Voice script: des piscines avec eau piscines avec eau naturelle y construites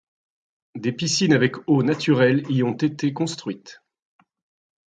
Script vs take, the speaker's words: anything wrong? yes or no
yes